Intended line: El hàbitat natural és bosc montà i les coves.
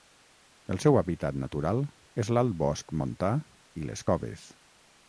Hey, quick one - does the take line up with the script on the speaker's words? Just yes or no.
no